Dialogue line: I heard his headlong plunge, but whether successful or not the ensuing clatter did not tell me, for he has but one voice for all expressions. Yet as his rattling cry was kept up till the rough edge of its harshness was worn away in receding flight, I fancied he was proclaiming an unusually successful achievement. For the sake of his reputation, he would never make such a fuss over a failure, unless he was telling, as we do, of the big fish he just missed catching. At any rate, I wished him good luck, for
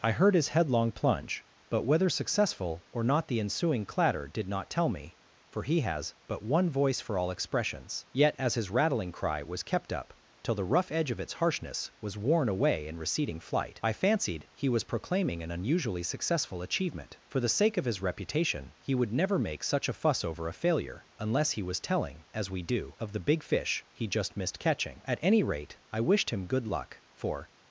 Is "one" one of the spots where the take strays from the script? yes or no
no